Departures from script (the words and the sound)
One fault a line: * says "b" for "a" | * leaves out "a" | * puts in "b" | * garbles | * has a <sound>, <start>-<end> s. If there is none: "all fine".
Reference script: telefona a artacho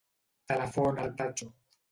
all fine